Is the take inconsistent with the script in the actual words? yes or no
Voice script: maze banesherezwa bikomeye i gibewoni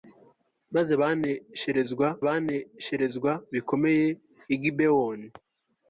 yes